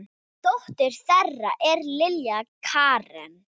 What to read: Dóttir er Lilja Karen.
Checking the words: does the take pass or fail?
fail